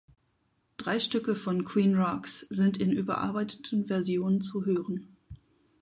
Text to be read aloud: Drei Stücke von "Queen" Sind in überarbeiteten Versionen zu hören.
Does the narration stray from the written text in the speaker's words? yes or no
yes